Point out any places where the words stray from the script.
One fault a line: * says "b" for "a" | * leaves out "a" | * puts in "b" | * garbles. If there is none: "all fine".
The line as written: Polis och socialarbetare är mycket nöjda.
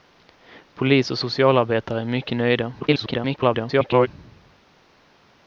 * garbles